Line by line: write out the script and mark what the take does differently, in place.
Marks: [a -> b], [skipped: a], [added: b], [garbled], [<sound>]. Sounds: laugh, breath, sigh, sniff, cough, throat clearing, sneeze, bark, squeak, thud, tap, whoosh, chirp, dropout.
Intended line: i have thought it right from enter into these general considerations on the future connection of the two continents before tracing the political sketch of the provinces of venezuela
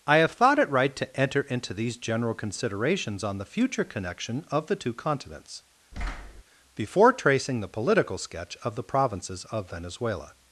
i have thought it right [from -> to] enter into these general considerations on the future connection of the two continents [thud] before tracing the political sketch of the provinces of venezuela